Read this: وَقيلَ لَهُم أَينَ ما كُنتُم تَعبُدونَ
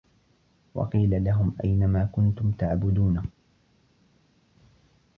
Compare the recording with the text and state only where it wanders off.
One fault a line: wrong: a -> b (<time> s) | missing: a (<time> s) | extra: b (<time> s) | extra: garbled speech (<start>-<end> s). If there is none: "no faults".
no faults